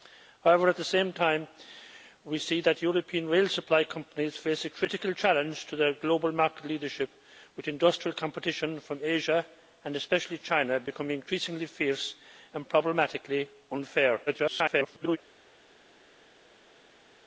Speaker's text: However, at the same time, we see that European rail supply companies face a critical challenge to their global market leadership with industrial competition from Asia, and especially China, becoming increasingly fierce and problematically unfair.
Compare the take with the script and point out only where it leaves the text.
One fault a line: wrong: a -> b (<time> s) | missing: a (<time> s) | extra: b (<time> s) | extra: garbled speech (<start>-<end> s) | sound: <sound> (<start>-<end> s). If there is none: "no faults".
extra: garbled speech (14.3-15.2 s)